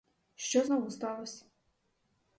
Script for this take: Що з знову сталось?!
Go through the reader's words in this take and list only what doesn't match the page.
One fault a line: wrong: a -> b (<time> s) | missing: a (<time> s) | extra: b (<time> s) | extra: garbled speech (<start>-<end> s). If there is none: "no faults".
no faults